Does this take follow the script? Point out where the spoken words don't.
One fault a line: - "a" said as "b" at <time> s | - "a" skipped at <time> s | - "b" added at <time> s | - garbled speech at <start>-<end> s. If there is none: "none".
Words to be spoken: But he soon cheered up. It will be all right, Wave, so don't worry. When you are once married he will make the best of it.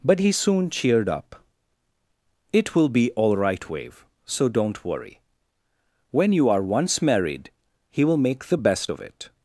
none